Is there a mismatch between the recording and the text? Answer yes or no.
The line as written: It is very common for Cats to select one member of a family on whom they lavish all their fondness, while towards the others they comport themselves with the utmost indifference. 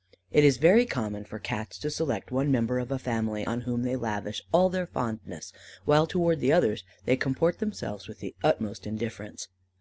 no